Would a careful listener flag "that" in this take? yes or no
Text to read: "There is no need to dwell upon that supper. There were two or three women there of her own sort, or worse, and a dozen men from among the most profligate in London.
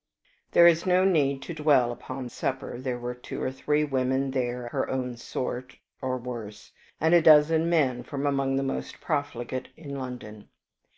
yes